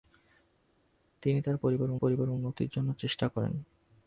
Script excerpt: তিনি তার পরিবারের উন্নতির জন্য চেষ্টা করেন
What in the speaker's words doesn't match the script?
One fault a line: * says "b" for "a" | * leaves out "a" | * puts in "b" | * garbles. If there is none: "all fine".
* puts in "পরিবারের"